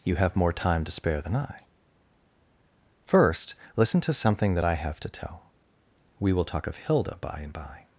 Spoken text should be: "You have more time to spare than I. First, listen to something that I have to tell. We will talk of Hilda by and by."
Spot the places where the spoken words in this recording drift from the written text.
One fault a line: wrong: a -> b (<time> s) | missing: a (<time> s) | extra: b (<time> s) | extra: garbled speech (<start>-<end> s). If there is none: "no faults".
no faults